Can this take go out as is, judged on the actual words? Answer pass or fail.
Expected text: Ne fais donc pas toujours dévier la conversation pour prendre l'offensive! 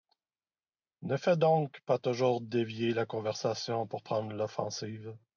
pass